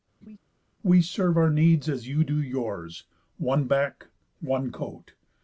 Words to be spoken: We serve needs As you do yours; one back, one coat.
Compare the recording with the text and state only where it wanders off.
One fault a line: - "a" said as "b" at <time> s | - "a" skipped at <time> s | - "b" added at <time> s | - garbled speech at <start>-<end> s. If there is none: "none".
- "our" added at 1.4 s